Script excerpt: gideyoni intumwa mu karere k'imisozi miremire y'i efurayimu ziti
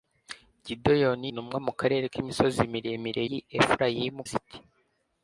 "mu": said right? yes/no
yes